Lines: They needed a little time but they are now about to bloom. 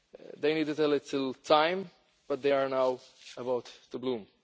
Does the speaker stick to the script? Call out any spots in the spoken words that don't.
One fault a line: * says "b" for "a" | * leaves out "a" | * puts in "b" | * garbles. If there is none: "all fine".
all fine